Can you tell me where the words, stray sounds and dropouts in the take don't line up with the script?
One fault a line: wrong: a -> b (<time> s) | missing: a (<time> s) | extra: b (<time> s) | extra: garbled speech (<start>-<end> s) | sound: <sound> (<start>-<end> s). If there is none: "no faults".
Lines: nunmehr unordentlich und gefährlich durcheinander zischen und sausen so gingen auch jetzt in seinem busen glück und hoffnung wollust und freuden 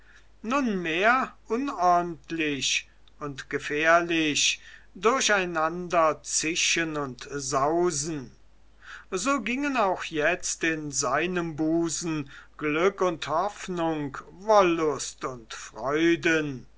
no faults